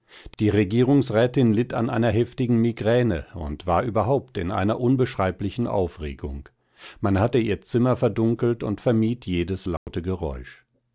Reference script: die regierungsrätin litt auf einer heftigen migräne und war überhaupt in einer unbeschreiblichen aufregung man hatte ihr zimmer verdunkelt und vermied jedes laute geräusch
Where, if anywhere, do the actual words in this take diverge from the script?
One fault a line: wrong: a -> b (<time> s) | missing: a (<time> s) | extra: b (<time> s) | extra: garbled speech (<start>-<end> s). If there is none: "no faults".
wrong: auf -> an (1.8 s)